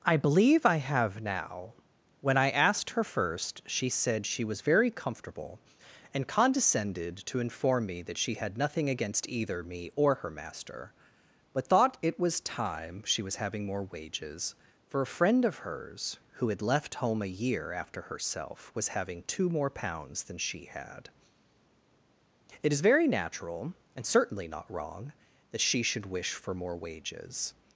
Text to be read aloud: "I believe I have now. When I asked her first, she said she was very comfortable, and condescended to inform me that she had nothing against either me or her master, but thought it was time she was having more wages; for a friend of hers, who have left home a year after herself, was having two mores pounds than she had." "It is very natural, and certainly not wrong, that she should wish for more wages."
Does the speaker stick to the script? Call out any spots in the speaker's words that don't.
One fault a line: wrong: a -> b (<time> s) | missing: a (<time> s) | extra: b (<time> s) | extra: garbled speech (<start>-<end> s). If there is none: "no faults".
wrong: have -> had (16.5 s)
wrong: mores -> more (19.5 s)